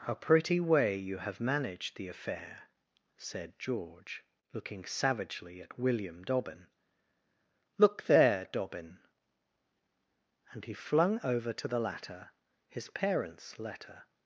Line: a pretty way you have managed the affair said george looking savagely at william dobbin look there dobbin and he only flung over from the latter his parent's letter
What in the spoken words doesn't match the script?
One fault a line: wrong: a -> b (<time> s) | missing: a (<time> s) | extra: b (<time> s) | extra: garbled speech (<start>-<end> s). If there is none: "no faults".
missing: only (10.7 s)
wrong: from -> to (11.5 s)